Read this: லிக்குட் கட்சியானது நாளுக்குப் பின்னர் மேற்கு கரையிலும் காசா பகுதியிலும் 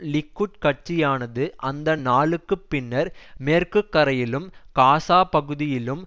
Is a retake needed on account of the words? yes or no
yes